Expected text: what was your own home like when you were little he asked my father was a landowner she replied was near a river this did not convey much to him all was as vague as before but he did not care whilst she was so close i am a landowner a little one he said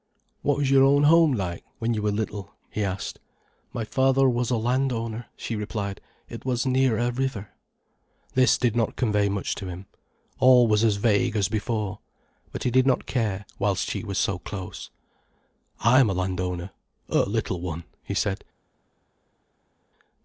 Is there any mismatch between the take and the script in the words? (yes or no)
yes